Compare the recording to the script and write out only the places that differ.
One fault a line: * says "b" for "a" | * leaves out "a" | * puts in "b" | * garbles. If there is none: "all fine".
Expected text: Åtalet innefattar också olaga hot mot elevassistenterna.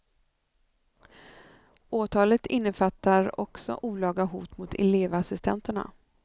all fine